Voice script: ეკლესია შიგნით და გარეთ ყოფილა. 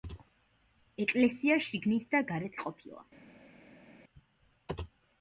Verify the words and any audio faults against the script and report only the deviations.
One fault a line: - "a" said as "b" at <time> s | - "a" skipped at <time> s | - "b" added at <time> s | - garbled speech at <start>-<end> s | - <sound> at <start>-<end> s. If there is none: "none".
none